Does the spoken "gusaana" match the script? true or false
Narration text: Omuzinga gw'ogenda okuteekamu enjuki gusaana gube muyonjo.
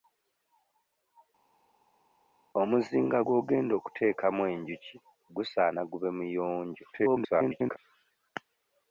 true